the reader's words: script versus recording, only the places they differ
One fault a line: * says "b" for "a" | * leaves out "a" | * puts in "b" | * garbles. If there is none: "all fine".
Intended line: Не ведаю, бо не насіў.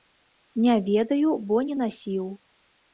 all fine